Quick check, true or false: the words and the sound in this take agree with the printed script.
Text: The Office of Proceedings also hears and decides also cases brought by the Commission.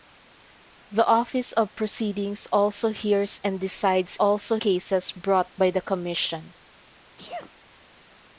false